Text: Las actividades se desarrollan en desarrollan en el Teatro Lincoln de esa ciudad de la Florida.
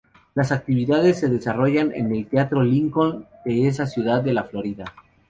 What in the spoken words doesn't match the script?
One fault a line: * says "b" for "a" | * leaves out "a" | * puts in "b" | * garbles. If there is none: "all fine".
* leaves out "desarrollan en"